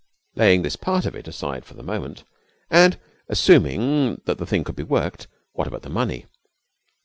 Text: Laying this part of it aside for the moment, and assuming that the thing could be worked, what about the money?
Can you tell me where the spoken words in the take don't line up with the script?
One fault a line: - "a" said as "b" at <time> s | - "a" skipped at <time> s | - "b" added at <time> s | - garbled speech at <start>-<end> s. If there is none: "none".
none